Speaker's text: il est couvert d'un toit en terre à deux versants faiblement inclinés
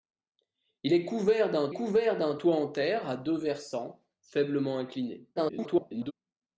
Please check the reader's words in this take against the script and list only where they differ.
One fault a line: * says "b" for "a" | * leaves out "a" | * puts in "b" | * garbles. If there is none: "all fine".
* puts in "couvert d'un"
* garbles